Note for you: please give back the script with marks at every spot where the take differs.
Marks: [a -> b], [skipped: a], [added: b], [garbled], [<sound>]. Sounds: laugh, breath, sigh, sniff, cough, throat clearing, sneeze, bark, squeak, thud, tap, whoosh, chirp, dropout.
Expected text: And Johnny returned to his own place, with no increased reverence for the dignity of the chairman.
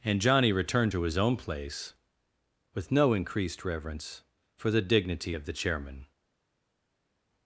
And Johnny returned to his own place, with no increased reverence for the dignity of the chairman.